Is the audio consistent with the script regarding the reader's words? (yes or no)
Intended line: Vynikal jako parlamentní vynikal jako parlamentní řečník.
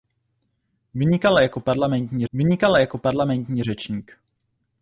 yes